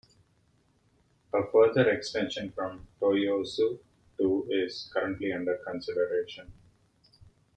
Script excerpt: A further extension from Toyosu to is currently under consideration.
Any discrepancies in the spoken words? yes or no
no